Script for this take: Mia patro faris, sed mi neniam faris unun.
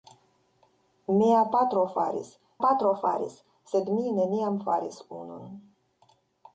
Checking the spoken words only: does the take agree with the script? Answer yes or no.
no